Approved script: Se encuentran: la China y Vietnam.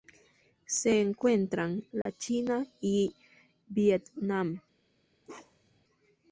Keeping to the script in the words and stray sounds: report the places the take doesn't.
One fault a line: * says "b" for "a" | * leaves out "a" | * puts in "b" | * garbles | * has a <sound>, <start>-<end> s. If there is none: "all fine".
* has a dropout, 2.0-2.1 s
* has a bark, 5.2-5.8 s